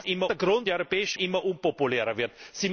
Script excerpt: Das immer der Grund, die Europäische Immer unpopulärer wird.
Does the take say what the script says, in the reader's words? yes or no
yes